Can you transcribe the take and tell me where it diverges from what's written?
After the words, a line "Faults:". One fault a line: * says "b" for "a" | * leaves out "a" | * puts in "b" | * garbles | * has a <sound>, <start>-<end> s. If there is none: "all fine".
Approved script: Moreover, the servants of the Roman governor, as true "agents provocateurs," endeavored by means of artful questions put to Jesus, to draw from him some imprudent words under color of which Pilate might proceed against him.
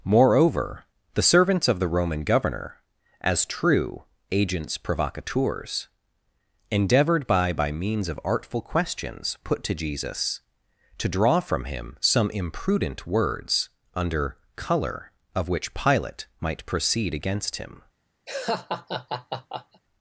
Moreover, the servants of the Roman governor, as true "agents provocateurs," endeavored by by means of artful questions put to Jesus, to draw from him some imprudent words under color of which Pilate might proceed against him.
Faults:
* puts in "by"
* has a laugh, 18.3-19.8 s